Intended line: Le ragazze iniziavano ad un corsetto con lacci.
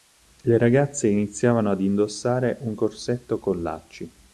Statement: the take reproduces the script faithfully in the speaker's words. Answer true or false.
false